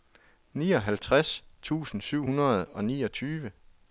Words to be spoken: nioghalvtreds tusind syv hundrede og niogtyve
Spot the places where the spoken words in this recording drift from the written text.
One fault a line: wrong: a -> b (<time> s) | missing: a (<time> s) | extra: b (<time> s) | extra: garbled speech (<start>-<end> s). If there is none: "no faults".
no faults